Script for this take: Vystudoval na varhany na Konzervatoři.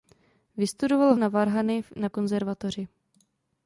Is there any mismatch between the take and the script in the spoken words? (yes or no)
no